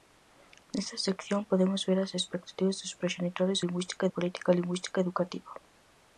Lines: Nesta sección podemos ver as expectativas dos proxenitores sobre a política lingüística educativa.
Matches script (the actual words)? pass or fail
fail